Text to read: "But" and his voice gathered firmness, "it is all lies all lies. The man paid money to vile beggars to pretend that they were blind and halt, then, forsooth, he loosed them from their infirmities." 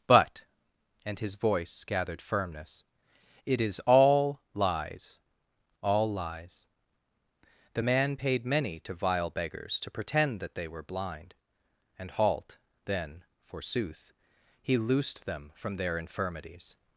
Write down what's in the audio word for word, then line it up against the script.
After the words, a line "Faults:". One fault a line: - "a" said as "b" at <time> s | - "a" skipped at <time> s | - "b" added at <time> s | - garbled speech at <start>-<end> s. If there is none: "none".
"But" and his voice gathered firmness, "it is all lies all lies. The man paid many to vile beggars to pretend that they were blind and halt, then, forsooth, he loosed them from their infirmities."
Faults:
- "money" said as "many" at 8.5 s